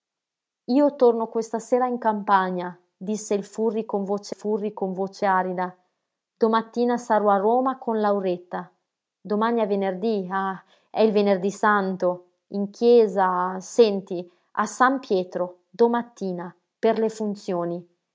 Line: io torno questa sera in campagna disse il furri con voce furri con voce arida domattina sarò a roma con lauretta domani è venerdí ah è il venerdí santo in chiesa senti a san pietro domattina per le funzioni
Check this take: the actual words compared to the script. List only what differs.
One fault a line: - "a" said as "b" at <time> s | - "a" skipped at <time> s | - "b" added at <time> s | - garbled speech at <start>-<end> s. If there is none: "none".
none